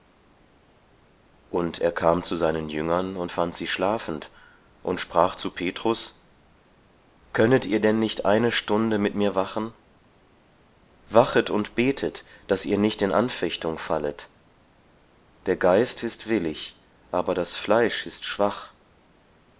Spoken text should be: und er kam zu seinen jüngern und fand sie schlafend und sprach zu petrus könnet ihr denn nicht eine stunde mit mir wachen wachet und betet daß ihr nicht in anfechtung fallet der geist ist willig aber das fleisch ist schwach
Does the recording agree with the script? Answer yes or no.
yes